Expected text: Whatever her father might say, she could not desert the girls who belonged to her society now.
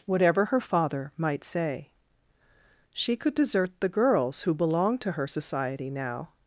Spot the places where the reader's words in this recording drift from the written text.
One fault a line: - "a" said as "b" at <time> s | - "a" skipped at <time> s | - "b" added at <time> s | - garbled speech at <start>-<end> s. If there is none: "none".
- "not" skipped at 3.3 s